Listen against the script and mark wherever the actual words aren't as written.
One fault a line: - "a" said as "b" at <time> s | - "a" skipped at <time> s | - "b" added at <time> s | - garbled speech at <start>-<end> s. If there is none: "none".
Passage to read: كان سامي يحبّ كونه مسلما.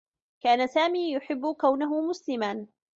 none